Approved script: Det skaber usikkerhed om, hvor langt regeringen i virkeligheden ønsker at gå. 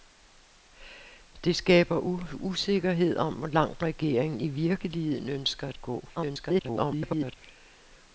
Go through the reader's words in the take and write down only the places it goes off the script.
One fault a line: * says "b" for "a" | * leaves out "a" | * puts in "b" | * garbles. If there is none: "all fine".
* garbles